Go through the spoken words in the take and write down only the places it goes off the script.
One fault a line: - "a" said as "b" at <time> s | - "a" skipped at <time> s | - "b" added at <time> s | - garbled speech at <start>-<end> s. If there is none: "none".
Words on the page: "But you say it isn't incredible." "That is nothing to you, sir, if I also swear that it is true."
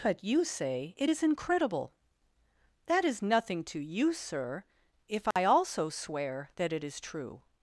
- "isn't" said as "is" at 1.1 s